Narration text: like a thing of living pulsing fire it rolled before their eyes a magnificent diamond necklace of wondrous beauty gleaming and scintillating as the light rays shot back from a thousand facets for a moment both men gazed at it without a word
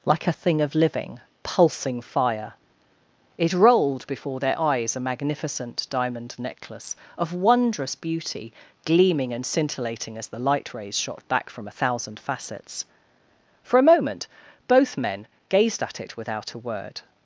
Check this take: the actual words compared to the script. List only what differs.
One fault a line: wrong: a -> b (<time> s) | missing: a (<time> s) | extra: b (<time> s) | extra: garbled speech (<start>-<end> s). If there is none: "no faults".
no faults